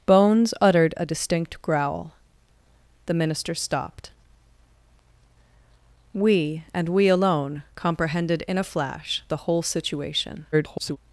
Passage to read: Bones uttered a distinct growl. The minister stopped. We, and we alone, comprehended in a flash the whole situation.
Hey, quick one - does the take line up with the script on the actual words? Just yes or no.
no